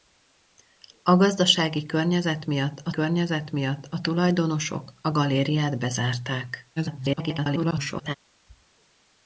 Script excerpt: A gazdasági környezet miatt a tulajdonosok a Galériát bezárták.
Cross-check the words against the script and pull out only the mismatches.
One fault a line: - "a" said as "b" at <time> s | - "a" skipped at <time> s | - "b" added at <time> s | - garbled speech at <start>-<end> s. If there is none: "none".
- "környezet miatt a" added at 2.9 s
- garbled speech at 6.8-8.2 s